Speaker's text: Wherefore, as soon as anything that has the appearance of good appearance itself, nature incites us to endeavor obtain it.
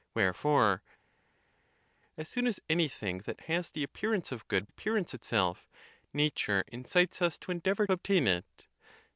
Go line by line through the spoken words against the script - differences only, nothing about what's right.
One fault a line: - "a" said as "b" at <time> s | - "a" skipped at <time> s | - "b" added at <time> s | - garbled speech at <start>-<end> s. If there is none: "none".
none